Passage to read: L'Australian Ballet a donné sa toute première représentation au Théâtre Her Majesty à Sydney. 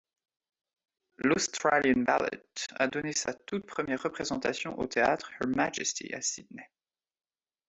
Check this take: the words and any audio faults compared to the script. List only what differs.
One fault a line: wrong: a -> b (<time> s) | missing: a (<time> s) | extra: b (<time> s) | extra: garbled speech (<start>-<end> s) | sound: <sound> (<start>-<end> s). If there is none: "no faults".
no faults